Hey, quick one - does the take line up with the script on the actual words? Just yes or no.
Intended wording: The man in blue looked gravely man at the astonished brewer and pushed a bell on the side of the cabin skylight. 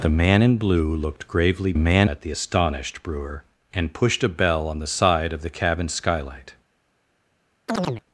yes